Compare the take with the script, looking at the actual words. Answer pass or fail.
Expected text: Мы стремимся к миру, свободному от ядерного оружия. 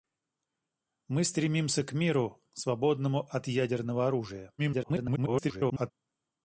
fail